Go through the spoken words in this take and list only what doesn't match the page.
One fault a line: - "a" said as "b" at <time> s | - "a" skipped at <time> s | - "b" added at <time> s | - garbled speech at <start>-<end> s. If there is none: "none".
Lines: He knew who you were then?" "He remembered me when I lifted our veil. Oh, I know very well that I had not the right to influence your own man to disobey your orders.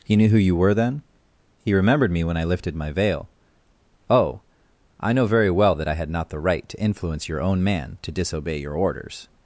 - "our" said as "my" at 2.8 s